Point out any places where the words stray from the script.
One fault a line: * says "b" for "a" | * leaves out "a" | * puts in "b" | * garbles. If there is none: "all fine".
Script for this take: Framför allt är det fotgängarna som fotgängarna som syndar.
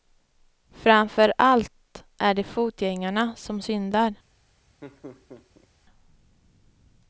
* leaves out "fotgängarna som"